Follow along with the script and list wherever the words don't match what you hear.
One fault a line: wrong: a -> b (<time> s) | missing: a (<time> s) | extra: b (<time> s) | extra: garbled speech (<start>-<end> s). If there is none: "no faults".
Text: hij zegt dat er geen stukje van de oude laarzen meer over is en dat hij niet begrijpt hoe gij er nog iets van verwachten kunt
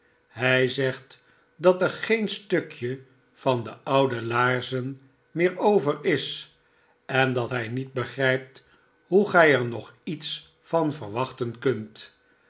no faults